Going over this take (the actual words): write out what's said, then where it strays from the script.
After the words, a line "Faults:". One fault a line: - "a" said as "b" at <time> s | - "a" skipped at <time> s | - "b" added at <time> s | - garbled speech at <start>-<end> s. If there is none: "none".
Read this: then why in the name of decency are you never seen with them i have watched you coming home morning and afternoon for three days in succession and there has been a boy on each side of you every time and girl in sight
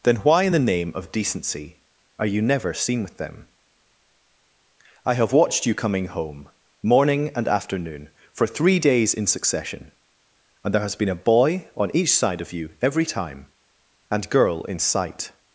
then why in the name of decency are you never seen with them i have watched you coming home morning and afternoon for three days in succession and there has been a boy on each side of you every time and girl in sight
Faults:
none